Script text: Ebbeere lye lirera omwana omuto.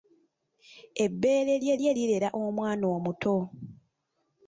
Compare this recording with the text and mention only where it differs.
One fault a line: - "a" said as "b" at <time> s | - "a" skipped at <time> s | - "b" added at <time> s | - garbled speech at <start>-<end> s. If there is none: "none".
- "lye" added at 1.8 s